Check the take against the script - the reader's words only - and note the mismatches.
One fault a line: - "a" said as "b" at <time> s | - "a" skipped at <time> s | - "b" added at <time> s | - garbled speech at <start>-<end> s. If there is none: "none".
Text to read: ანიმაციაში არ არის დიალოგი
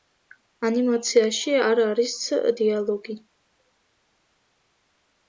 none